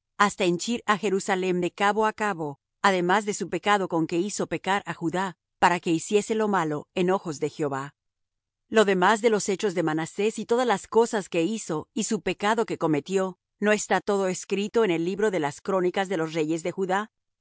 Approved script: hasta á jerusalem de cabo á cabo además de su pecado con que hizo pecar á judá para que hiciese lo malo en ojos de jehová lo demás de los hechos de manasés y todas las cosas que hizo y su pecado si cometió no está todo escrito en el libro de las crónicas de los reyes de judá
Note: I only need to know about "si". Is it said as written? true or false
false